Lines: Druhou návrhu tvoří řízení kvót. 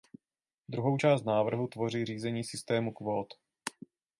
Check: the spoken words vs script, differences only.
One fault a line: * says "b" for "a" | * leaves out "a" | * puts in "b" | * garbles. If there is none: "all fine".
* puts in "část"
* puts in "systému"